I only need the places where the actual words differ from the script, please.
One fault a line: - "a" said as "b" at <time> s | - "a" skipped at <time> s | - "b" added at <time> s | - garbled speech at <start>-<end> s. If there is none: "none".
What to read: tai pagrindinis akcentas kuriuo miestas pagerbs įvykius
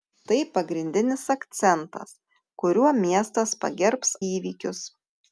none